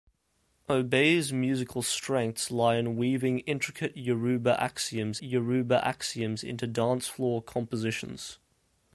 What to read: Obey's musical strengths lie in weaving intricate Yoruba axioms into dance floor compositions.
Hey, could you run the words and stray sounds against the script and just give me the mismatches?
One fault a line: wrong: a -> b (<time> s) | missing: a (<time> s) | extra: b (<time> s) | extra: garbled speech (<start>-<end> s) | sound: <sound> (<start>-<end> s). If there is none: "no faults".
extra: Yoruba axioms (5.2 s)